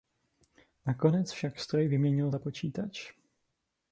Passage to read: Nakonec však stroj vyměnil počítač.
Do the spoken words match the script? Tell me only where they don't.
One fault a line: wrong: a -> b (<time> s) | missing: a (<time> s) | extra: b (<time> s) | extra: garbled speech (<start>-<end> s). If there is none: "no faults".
extra: za (2.3 s)